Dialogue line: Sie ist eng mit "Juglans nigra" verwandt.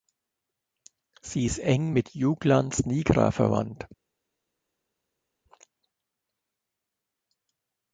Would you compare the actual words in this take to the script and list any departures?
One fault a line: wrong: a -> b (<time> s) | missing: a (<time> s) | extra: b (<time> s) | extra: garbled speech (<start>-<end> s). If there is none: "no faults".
no faults